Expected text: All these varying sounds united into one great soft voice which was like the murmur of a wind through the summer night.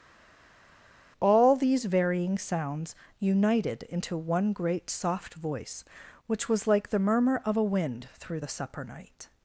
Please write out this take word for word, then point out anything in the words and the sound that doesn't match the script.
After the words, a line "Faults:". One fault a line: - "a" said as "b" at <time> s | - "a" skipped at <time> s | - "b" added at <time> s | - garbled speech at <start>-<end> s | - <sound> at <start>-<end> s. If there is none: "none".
All these varying sounds united into one great soft voice which was like the murmur of a wind through the supper night.
Faults:
- "summer" said as "supper" at 8.5 s